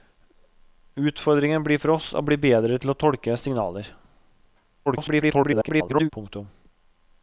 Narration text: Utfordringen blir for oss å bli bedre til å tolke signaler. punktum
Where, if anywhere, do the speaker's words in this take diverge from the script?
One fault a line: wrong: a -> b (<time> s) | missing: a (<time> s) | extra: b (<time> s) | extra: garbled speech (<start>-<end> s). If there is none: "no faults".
extra: garbled speech (4.9-6.1 s)